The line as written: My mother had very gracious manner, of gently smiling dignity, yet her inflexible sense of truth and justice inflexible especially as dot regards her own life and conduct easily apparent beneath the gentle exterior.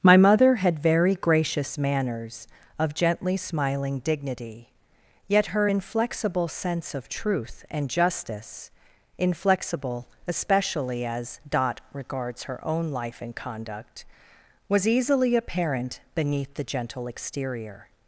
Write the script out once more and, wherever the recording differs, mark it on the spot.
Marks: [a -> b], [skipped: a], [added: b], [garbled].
My mother had very gracious [manner, -> manners] of gently smiling dignity, yet her inflexible sense of truth and justice inflexible especially as dot regards her own life and conduct [added: was] easily apparent beneath the gentle exterior.